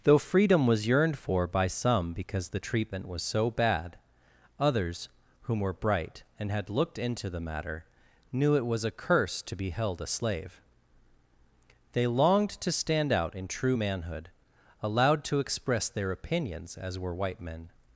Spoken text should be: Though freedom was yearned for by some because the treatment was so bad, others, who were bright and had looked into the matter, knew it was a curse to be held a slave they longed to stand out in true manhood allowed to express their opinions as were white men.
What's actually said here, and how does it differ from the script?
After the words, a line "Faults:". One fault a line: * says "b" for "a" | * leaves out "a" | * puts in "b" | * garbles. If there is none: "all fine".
Though freedom was yearned for by some because the treatment was so bad, others, whom were bright and had looked into the matter, knew it was a curse to be held a slave they longed to stand out in true manhood allowed to express their opinions as were white men.
Faults:
* says "whom" for "who"